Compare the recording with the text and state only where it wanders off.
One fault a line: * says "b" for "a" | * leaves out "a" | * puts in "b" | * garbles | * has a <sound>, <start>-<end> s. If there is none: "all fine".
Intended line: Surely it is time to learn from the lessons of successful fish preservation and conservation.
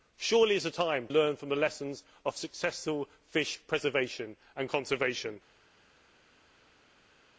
* leaves out "to"